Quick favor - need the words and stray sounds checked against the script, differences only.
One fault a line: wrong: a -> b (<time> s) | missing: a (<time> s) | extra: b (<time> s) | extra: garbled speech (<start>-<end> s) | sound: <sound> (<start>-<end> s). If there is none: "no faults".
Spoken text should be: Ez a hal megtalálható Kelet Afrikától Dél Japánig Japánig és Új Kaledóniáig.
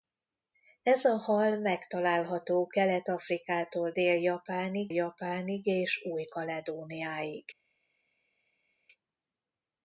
no faults